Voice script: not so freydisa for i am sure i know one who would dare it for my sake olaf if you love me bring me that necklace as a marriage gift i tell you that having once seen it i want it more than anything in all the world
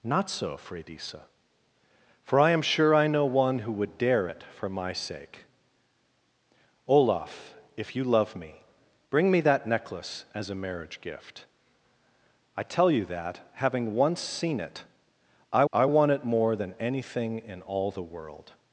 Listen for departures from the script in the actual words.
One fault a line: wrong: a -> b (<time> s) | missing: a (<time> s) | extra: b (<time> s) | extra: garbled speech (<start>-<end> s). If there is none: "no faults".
extra: i (15.7 s)